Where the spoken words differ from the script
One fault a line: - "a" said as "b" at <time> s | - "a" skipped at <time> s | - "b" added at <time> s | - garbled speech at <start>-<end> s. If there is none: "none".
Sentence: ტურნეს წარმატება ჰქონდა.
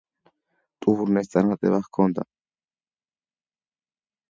none